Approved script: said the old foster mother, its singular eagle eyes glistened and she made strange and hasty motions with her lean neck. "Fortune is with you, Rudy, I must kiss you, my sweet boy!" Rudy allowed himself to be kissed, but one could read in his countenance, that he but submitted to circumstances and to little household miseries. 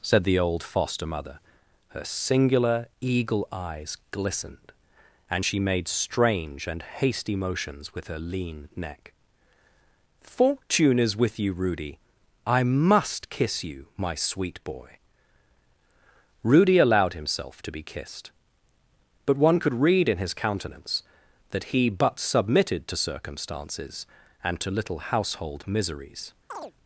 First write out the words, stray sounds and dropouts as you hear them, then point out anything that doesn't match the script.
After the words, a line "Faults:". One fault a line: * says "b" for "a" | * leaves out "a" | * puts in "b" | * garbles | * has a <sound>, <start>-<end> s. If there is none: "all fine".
said the old foster mother, her singular eagle eyes glistened and she made strange and hasty motions with her lean neck. "Fortune is with you, Rudy, I must kiss you, my sweet boy!" Rudy allowed himself to be kissed, but one could read in his countenance, that he but submitted to circumstances and to little household miseries.
Faults:
* says "her" for "its"
* has a chirp, 26.5-26.7 s